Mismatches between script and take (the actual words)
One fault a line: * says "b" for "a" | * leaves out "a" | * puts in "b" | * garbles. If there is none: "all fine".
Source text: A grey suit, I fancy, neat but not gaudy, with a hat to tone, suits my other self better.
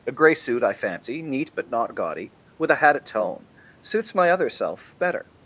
* says "at" for "to"